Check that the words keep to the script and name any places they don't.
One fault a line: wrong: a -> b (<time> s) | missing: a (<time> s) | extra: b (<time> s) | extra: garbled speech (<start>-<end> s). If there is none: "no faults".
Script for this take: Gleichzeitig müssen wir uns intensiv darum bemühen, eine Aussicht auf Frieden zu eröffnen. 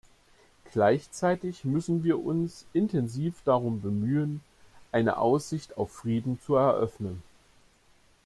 no faults